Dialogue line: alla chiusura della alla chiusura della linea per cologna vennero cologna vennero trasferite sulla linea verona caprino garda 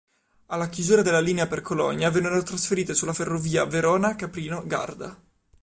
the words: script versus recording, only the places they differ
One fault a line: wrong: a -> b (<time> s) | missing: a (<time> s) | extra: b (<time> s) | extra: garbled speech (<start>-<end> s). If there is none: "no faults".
missing: alla chiusura della (1.2 s)
missing: cologna vennero (2.4 s)
wrong: linea -> ferrovia (3.1 s)